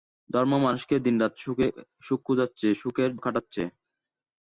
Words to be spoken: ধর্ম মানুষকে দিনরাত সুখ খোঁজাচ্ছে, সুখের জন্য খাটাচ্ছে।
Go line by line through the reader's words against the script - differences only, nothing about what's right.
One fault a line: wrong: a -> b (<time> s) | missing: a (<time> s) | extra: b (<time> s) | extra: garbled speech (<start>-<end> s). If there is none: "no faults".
missing: জন্য (3.1 s)